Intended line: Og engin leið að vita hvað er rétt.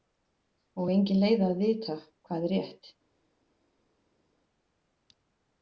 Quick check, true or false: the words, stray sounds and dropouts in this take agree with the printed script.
true